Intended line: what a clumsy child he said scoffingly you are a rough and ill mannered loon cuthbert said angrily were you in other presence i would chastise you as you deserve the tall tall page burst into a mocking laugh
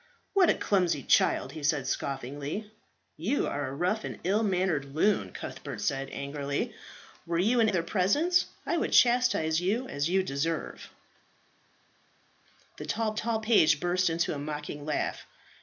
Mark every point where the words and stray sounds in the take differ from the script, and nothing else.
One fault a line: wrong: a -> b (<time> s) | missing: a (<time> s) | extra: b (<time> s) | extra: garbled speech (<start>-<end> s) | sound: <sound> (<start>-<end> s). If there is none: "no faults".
no faults